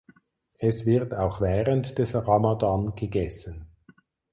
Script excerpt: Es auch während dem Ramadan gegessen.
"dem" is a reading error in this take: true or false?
true